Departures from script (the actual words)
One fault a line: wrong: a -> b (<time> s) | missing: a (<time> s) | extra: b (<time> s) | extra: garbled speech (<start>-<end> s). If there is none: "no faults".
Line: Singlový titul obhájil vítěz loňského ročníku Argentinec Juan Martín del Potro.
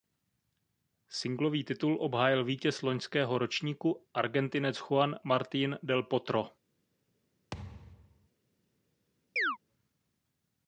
no faults